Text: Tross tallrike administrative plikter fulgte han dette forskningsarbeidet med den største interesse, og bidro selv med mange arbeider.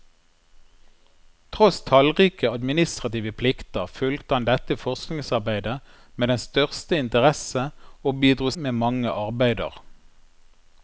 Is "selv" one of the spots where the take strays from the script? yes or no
yes